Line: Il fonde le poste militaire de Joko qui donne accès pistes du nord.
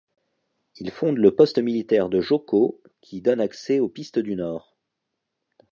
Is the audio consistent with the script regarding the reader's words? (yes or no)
no